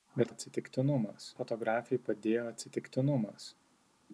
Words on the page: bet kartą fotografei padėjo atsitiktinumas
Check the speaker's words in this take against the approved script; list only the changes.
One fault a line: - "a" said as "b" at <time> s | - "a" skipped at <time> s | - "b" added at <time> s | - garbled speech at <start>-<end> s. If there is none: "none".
- "kartą" said as "atsitiktinumas" at 0.3 s